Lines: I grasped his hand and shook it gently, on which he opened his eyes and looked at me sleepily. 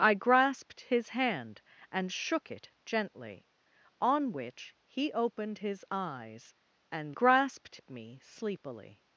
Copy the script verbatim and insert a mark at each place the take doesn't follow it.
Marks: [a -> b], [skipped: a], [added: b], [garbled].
I grasped his hand and shook it gently, on which he opened his eyes and [looked -> grasped] at me sleepily.